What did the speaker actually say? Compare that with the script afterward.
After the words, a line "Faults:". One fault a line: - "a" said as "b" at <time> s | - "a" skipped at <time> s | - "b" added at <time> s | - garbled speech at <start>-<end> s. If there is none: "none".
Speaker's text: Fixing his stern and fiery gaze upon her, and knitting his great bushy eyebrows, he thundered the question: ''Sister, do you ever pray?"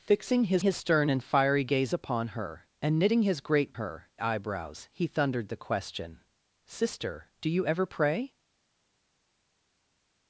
Fixing his his stern and fiery gaze upon her, and knitting his great her eyebrows, he thundered the question: ''Sister, do you ever pray?"
Faults:
- "his" added at 0.6 s
- "bushy" said as "her" at 3.7 s